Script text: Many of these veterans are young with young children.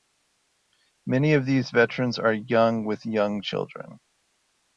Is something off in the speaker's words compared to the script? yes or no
no